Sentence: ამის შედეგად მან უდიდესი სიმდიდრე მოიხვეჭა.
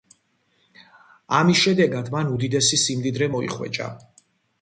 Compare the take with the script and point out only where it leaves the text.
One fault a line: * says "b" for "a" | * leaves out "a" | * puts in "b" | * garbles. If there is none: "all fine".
all fine